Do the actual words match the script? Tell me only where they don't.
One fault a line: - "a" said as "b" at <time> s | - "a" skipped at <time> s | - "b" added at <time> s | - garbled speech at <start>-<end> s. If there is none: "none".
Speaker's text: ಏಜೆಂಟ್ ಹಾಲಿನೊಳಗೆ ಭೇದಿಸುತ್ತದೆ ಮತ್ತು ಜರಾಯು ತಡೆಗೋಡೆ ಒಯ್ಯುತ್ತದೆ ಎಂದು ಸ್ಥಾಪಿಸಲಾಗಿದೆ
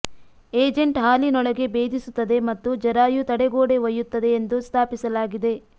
none